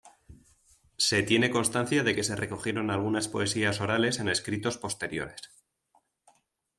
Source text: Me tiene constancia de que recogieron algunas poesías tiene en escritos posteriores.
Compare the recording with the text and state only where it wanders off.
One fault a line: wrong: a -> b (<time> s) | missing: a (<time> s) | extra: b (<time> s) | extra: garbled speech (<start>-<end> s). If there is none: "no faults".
wrong: Me -> Se (1.0 s)
extra: se (2.2 s)
wrong: tiene -> orales (3.8 s)